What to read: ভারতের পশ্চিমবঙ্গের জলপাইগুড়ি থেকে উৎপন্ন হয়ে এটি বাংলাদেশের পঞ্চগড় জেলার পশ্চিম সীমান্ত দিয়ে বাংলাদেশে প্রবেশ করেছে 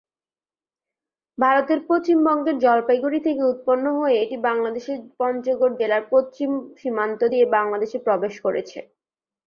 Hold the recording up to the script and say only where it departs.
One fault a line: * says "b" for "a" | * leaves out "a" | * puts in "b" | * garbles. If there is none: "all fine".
all fine